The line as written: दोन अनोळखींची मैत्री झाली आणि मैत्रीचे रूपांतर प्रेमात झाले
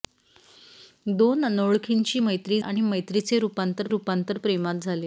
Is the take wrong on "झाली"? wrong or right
wrong